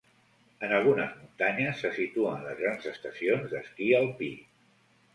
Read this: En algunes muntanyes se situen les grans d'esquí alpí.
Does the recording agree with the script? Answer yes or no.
no